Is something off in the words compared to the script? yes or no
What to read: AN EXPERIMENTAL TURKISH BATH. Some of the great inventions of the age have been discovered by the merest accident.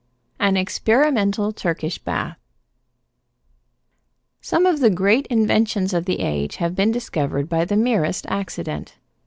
no